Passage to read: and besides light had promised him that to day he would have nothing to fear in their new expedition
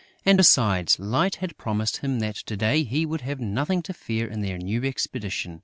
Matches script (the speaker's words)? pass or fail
pass